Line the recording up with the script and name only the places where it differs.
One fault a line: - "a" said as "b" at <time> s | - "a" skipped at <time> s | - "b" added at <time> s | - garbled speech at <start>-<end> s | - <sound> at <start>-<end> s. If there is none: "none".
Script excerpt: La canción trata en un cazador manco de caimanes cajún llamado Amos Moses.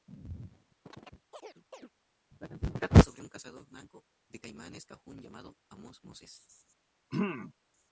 - chirp at 0.8-1.9 s
- "en" said as "sobre" at 3.0 s
- throat clearing at 7.1-7.5 s